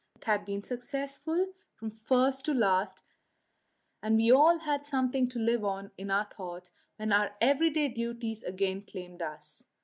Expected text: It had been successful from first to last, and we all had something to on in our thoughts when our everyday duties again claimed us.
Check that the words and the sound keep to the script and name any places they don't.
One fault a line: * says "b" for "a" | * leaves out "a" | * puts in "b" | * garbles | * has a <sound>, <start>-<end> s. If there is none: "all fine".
* puts in "live"